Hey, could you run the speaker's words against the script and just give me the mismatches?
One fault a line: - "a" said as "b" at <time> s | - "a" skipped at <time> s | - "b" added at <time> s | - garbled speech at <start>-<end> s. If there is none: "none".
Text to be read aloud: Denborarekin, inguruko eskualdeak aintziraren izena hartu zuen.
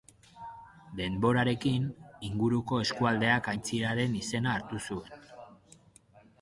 none